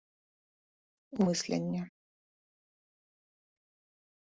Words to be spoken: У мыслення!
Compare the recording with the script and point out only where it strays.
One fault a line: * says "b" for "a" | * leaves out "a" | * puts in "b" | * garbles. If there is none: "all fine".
all fine